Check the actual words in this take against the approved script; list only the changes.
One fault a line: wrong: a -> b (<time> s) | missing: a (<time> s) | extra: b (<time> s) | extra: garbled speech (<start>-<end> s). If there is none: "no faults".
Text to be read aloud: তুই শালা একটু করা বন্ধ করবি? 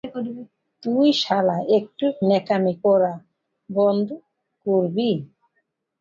extra: ন্যাকামি (2.3 s)